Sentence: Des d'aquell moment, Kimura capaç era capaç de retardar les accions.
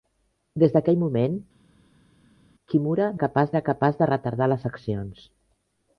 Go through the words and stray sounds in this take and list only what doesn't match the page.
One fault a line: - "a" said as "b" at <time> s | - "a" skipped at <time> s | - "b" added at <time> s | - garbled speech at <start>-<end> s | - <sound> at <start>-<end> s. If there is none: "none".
none